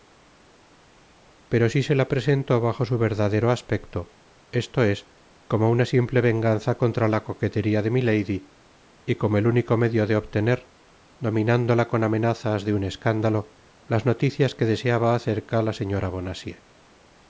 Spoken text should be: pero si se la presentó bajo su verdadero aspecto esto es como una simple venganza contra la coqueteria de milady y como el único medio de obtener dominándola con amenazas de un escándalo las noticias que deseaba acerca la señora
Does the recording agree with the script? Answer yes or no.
yes